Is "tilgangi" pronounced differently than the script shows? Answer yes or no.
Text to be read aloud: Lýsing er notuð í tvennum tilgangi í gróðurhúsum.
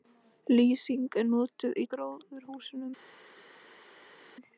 yes